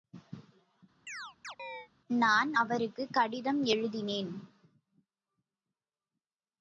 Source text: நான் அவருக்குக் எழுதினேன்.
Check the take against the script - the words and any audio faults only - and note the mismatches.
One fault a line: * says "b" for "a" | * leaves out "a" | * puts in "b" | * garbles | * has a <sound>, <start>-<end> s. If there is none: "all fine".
* has a chirp, 1.1-1.9 s
* puts in "கடிதம்"